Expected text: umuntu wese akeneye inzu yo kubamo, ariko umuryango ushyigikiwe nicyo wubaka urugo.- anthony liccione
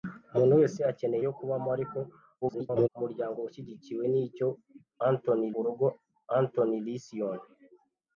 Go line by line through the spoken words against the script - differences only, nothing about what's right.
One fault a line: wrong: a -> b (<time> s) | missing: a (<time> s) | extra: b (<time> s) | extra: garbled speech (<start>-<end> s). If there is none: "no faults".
missing: inzu (1.2 s)
extra: garbled speech (2.4-2.9 s)
wrong: wubaka -> anthony (5.1 s)